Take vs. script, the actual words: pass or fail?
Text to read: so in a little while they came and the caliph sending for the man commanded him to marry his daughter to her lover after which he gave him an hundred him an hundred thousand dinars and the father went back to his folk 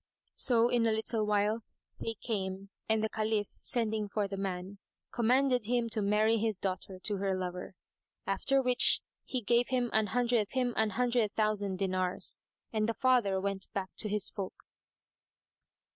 pass